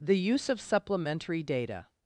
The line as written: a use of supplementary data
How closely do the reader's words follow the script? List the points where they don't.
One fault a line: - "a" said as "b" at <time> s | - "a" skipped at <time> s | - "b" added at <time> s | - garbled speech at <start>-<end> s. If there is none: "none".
- "a" said as "the" at 0.0 s